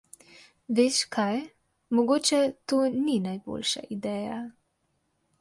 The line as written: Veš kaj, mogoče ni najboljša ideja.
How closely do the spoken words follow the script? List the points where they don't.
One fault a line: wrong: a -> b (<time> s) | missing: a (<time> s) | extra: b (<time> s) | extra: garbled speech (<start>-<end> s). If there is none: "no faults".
extra: to (2.6 s)